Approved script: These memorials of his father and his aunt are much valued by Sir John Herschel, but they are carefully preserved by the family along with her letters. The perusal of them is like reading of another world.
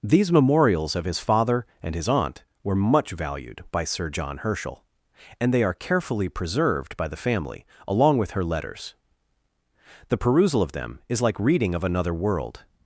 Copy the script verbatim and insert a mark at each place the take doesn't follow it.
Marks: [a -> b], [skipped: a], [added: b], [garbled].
These memorials of his father and his aunt [are -> were] much valued by Sir John Herschel, [but -> and] they are carefully preserved by the family along with her letters. The perusal of them is like reading of another world.